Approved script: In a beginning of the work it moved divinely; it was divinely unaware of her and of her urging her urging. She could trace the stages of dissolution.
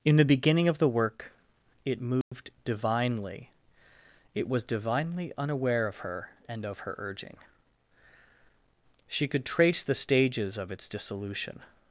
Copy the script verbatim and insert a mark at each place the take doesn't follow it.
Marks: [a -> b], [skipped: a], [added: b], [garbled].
In [a -> the] beginning of the work it moved divinely; it was divinely unaware of her and of her urging [skipped: her urging.] She could trace the stages of [added: its] dissolution.